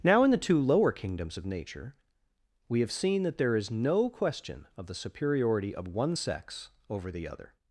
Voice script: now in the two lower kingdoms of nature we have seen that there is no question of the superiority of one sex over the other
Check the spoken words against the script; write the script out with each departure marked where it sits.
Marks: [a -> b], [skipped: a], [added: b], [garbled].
now in the two lower kingdoms of nature we have seen that there is no question of the superiority of one sex over the other